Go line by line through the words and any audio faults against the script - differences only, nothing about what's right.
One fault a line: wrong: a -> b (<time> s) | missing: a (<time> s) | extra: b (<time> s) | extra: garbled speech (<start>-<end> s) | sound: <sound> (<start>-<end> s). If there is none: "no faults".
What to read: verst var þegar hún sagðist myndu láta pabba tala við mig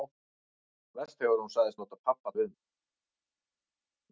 missing: var (1.2 s)
missing: myndu (1.8 s)
missing: tala (2.3 s)